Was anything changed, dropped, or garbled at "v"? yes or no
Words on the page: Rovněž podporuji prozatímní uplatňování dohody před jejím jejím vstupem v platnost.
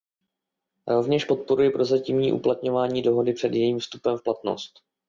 no